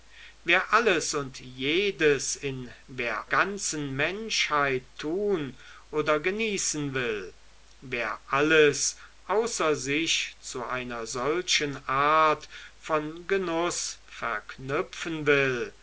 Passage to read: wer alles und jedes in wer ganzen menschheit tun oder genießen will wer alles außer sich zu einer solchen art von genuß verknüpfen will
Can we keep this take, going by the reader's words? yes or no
yes